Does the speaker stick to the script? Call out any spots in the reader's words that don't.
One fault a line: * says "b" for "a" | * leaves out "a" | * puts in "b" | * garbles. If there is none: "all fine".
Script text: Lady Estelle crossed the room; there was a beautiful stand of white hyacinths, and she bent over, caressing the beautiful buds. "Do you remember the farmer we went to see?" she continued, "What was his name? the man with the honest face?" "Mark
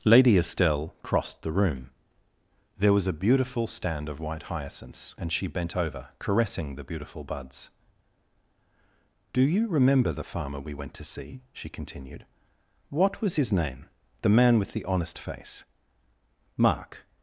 all fine